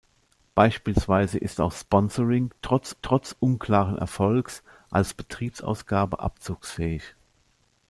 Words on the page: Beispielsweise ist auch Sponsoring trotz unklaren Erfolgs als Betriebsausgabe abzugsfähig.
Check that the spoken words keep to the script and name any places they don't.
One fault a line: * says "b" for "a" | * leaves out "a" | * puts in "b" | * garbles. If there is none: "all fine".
* puts in "trotz"